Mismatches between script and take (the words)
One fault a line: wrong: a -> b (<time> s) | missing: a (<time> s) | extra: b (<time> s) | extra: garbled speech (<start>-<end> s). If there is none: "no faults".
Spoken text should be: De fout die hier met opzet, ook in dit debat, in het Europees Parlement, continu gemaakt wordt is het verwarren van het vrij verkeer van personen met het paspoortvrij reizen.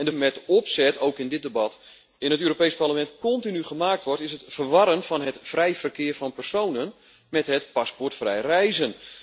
missing: fout die hier (0.1 s)